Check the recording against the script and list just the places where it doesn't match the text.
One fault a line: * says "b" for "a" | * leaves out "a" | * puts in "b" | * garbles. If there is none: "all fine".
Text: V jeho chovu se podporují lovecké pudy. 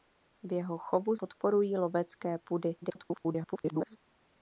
* leaves out "se"
* garbles